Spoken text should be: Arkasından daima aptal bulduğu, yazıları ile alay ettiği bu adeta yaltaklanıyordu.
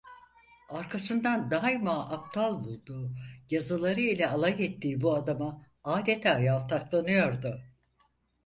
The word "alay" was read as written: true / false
true